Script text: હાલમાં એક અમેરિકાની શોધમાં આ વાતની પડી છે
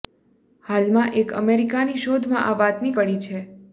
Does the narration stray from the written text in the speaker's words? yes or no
no